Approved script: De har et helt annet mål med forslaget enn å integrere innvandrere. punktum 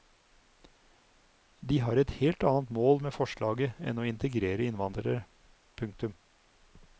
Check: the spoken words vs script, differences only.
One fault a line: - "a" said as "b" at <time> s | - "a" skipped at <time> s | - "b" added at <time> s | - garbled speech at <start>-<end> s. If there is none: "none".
none